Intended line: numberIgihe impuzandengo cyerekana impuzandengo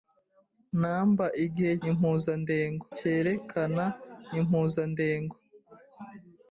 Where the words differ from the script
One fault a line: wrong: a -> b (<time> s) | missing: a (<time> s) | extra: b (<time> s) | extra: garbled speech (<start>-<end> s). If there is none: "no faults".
no faults